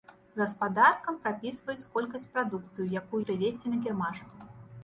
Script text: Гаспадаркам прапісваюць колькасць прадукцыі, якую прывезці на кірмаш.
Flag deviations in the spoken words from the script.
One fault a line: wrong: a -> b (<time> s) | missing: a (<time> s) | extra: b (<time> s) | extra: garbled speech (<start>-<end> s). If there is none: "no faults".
no faults